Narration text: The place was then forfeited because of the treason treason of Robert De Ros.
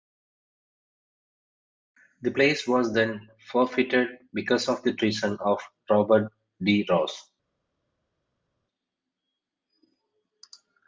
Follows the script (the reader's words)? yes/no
no